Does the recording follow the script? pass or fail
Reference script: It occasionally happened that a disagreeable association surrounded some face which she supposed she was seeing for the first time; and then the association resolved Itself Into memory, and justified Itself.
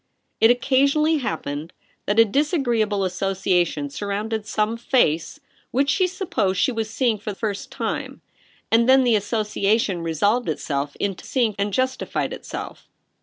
fail